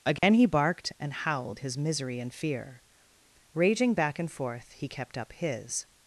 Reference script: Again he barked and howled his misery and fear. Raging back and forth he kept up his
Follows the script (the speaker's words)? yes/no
yes